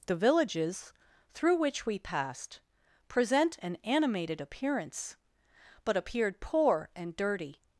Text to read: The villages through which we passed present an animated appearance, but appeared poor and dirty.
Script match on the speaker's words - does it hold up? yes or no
yes